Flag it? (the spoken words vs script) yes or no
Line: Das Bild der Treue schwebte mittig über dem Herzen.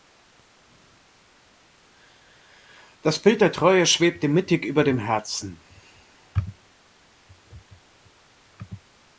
no